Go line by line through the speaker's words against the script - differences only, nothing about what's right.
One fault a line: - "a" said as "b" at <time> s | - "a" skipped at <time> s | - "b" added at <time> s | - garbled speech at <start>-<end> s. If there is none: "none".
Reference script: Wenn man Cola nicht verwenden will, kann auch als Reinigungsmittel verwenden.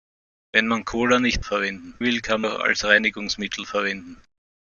none